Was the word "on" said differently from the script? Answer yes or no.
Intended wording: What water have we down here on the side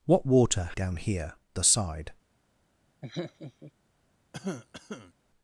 yes